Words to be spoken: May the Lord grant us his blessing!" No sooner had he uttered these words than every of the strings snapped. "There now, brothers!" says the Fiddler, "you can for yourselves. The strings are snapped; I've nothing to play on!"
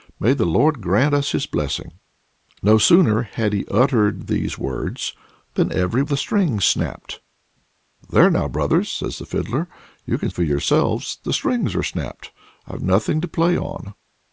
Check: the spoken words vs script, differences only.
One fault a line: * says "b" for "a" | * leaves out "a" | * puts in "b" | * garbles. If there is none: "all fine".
all fine